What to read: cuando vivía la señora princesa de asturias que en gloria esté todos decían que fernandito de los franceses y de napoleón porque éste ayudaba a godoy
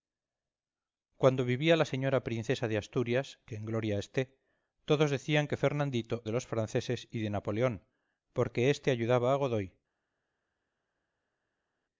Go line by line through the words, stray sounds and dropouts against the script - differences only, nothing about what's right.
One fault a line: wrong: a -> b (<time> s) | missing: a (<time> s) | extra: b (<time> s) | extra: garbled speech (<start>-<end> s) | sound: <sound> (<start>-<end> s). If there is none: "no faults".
no faults